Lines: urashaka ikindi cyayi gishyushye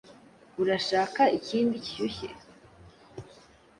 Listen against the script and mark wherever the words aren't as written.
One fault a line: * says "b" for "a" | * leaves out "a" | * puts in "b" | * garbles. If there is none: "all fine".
* leaves out "cyayi"